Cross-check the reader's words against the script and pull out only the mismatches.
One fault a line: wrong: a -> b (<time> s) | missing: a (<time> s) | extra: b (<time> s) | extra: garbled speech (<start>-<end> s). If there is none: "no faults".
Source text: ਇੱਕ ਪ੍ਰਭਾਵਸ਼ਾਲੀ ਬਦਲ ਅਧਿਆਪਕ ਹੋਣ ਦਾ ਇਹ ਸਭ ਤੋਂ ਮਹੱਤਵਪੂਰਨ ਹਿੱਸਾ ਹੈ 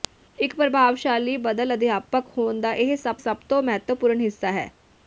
extra: ਸਭ (3.2 s)